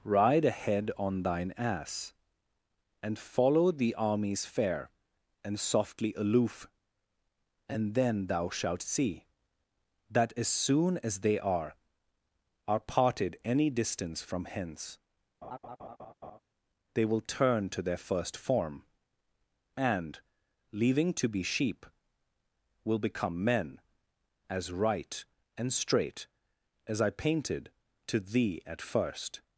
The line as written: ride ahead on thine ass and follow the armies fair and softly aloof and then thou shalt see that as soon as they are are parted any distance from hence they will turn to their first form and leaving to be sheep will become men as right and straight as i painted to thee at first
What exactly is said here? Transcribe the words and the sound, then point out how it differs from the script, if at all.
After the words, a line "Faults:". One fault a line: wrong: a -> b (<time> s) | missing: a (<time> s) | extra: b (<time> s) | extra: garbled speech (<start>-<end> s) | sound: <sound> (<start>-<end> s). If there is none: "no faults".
ride ahead on thine ass and follow the armies fair and softly aloof and then thou shalt see that as soon as they are are parted any distance from hence they will turn to their first form and leaving to be sheep will become men as right and straight as i painted to thee at first
Faults:
sound: laugh (15.4-16.4 s)